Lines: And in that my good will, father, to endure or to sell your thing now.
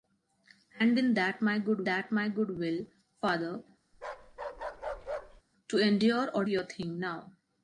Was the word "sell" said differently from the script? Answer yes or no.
yes